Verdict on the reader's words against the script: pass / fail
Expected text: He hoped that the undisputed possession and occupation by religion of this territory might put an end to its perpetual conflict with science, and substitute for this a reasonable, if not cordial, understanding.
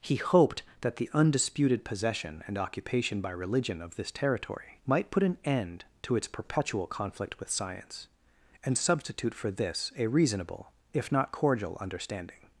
pass